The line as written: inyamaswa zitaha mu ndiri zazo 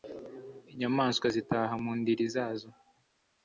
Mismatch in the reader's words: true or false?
false